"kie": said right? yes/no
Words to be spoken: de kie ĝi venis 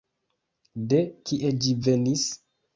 yes